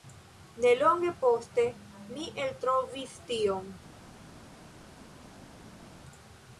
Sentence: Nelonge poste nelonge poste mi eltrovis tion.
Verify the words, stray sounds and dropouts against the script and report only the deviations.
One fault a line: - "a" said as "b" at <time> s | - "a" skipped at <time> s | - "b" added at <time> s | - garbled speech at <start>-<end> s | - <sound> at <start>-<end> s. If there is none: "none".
- "nelonge poste" skipped at 1.7 s